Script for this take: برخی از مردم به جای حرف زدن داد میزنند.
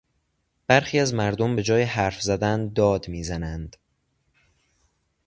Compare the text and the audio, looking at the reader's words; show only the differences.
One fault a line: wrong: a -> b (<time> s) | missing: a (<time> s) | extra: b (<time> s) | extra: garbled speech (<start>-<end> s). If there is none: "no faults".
no faults